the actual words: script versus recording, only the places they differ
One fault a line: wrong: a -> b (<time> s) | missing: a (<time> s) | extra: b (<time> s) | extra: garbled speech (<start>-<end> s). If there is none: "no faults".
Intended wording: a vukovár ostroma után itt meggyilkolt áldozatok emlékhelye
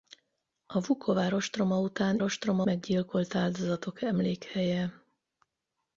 wrong: itt -> ostroma (2.2 s)